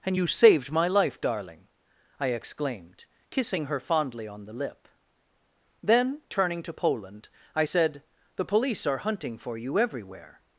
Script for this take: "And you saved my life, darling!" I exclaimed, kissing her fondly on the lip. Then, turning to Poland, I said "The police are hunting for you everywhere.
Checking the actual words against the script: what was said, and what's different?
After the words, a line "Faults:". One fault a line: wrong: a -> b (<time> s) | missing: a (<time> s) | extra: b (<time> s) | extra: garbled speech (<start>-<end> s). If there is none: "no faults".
"And you saved my life, darling!" I exclaimed, kissing her fondly on the lip. Then, turning to Poland, I said "The police are hunting for you everywhere.
Faults:
no faults